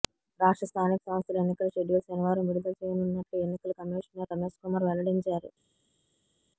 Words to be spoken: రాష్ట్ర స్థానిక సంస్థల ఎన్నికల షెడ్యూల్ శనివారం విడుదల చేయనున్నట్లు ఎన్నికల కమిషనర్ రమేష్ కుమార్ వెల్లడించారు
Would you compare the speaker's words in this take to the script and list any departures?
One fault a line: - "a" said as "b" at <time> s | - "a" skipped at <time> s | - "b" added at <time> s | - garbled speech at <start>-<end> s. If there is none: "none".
none